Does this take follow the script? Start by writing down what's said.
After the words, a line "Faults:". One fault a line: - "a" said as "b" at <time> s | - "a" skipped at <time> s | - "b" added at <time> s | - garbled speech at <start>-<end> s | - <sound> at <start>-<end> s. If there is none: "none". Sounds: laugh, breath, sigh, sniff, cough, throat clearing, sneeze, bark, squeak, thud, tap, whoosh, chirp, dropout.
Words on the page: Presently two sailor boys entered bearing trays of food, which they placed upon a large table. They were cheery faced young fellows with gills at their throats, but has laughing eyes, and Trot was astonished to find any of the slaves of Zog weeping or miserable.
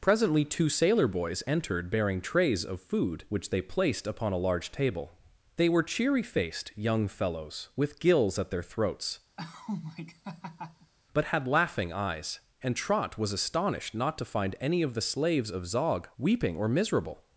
Presently two sailor boys entered bearing trays of food, which they placed upon a large table. They were cheery faced young fellows with gills at their throats, but had laughing eyes, and Trot was astonished not to find any of the slaves of Zog weeping or miserable.
Faults:
- laugh at 9.4-10.9 s
- "has" said as "had" at 11.3 s
- "not" added at 13.9 s